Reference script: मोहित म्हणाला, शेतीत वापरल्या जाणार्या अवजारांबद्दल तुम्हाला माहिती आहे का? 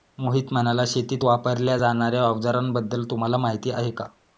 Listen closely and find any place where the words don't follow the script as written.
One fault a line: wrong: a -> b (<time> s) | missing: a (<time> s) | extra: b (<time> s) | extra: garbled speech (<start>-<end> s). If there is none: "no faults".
no faults